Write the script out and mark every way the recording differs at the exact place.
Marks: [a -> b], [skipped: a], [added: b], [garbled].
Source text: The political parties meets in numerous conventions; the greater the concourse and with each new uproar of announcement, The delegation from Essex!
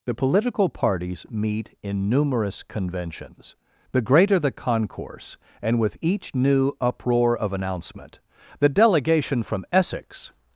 The political parties [meets -> meet] in numerous conventions; the greater the concourse and with each new uproar of announcement, The delegation from Essex!